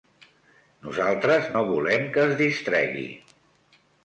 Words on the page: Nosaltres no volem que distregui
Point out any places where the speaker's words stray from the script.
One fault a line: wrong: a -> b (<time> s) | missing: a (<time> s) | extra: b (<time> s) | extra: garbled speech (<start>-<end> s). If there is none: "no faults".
extra: es (2.3 s)